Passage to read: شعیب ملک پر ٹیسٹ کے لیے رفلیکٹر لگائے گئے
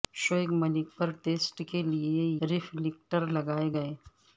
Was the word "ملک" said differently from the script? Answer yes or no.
no